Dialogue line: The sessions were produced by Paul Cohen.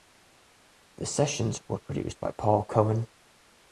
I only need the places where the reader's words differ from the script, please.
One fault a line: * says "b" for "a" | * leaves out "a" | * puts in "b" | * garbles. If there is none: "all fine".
all fine